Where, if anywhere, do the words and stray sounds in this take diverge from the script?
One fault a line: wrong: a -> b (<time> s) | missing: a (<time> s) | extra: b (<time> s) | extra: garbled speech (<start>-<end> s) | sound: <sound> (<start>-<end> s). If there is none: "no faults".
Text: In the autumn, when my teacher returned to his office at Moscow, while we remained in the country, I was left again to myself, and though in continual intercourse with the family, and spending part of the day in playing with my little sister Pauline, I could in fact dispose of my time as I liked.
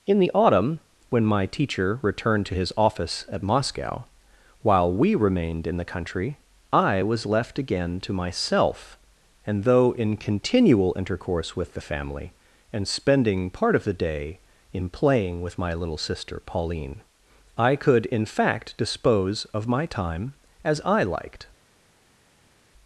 no faults